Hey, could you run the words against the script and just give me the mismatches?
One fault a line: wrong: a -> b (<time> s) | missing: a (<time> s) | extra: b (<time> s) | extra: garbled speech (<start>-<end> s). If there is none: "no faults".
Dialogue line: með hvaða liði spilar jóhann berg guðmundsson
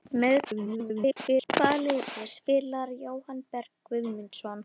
extra: garbled speech (0.4-1.5 s)